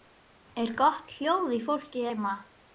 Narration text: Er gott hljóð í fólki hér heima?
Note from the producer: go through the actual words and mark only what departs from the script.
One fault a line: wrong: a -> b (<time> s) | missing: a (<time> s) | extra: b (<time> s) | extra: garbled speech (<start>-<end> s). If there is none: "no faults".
missing: hér (2.0 s)